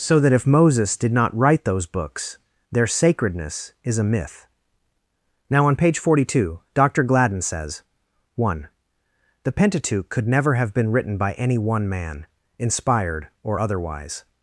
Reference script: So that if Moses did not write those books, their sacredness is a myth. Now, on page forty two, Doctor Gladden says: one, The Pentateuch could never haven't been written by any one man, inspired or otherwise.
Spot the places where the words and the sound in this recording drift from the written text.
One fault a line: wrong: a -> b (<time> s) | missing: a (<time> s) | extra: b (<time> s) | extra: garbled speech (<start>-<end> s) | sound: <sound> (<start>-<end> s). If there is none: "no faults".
wrong: haven't -> have (10.6 s)